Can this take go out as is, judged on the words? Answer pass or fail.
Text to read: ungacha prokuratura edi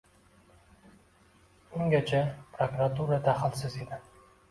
fail